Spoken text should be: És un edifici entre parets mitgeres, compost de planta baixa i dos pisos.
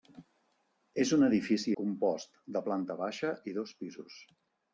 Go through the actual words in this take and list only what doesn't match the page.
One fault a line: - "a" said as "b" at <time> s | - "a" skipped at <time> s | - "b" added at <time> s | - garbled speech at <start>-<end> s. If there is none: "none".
- "entre parets mitgeres" skipped at 1.7 s